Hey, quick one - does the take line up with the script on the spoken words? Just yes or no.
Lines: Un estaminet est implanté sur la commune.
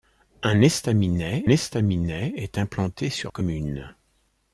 no